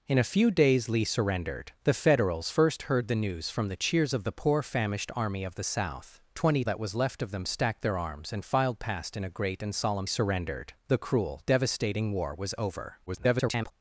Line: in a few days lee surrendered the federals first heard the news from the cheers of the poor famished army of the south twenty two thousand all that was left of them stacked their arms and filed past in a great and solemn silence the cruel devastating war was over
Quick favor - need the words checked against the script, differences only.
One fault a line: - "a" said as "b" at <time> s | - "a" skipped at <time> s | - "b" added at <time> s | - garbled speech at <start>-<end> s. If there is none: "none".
- "two thousand all" skipped at 6.6 s
- "silence" said as "surrendered" at 10.1 s
- garbled speech at 13.1-13.7 s